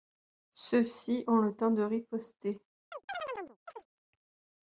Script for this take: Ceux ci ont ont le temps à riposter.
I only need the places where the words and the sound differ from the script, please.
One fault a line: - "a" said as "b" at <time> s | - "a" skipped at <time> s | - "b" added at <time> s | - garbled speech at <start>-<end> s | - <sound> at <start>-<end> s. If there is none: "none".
- "ont" skipped at 1.4 s
- "à" said as "de" at 1.7 s
- chirp at 2.9-3.9 s